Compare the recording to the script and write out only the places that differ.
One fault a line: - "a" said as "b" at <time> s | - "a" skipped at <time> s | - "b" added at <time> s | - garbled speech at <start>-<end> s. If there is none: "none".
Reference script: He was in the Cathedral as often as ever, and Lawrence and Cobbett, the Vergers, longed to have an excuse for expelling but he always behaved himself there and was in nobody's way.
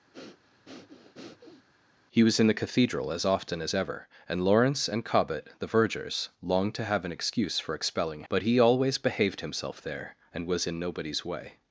none